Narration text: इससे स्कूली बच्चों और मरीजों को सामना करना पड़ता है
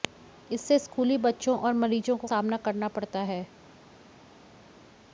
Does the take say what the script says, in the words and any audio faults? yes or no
yes